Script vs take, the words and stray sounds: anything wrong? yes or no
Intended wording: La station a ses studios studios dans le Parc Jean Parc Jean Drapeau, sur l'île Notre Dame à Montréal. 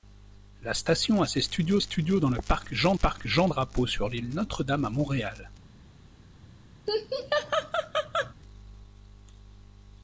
yes